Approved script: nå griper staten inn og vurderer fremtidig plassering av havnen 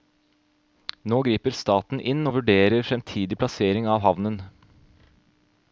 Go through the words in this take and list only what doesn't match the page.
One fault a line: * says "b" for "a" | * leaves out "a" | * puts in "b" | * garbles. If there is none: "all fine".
all fine